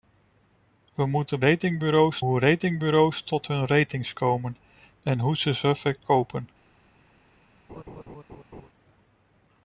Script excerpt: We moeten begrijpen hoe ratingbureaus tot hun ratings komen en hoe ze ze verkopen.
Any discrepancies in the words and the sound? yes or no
yes